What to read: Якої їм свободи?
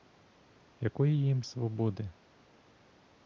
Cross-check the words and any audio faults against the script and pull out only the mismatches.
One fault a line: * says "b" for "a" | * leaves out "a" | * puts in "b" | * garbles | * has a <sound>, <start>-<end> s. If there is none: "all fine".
all fine